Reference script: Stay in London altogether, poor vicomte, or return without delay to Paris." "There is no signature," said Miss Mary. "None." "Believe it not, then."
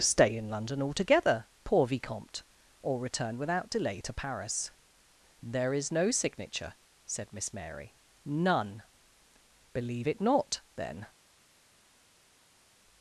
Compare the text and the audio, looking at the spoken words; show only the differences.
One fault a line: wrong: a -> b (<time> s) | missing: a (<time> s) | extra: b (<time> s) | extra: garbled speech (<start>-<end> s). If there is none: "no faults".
no faults